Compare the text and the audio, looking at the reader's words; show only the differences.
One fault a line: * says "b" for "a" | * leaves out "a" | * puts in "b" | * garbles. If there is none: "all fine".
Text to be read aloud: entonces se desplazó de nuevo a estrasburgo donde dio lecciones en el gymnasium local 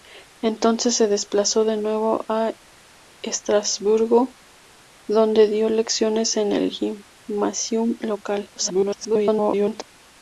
* garbles